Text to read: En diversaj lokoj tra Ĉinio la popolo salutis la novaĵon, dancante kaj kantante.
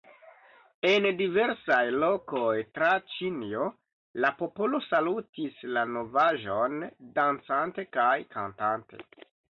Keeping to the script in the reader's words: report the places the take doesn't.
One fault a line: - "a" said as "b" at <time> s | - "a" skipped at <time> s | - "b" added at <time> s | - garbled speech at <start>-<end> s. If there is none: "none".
none